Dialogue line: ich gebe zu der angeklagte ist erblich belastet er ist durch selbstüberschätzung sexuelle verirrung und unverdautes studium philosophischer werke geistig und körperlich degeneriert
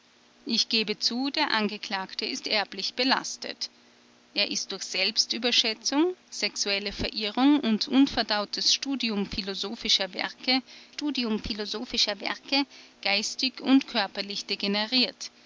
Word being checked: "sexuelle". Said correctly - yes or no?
yes